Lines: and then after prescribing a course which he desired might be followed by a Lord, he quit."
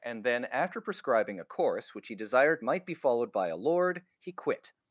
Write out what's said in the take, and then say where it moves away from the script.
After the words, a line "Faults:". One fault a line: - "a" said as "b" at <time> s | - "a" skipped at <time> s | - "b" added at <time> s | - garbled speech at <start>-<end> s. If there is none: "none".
and then after prescribing a course which he desired might be followed by a Lord, he quit."
Faults:
none